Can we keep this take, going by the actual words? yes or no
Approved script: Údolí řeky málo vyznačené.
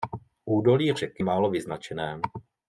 yes